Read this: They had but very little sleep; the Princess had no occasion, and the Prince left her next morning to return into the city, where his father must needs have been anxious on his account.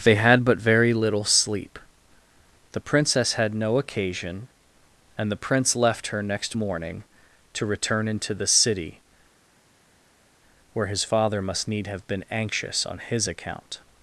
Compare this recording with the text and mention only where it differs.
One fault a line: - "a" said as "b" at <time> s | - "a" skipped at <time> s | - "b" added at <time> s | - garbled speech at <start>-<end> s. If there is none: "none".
- "needs" said as "need" at 11.7 s